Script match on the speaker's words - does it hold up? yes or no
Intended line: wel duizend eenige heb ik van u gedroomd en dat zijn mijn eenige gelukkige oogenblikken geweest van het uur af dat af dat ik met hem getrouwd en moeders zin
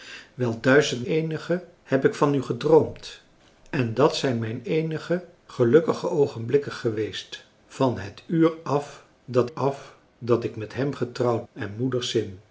yes